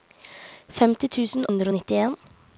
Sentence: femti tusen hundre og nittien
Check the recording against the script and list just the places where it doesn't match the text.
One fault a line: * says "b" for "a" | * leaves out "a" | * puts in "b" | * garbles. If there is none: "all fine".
all fine